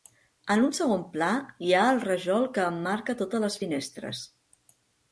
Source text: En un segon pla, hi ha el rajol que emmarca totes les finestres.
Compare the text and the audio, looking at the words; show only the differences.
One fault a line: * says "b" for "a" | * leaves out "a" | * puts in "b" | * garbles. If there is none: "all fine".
all fine